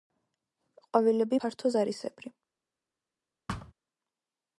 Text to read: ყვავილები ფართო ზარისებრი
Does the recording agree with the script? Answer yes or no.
yes